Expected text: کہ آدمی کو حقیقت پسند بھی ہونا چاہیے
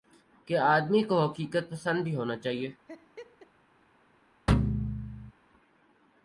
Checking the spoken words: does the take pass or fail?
pass